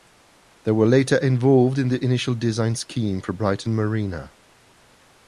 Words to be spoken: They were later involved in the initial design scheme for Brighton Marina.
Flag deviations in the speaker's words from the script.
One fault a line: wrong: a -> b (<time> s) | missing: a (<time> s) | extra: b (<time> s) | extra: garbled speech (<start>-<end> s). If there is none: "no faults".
no faults